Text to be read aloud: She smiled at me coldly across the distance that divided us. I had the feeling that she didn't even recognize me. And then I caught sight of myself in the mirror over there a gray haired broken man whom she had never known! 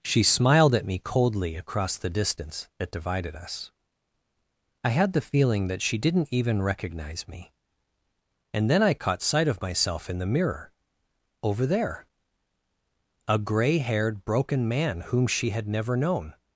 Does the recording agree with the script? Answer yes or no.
yes